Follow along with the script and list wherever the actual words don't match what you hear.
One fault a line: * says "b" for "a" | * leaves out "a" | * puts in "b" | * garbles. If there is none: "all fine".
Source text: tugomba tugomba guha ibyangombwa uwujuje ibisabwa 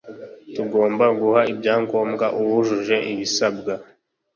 * leaves out "tugomba"